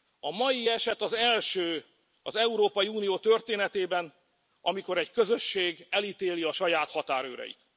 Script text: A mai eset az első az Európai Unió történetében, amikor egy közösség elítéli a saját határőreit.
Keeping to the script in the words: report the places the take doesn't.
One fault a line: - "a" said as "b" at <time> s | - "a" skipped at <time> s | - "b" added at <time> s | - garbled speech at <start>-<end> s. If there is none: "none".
none